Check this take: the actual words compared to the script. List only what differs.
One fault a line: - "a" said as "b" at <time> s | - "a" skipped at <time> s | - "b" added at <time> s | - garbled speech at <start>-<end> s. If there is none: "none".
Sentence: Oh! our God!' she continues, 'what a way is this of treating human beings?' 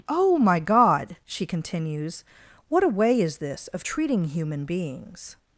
- "our" said as "my" at 0.4 s